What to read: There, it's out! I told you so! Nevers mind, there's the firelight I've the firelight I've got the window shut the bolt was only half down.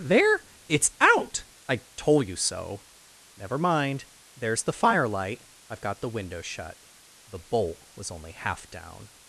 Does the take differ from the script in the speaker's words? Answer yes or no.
yes